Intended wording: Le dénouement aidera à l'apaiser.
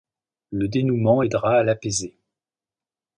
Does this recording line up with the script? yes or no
yes